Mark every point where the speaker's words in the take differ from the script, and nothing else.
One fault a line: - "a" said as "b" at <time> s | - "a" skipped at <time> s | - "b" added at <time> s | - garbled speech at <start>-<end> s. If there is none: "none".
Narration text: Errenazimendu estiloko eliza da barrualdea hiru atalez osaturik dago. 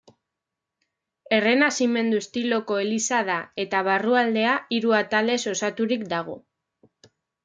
- "eta" added at 3.6 s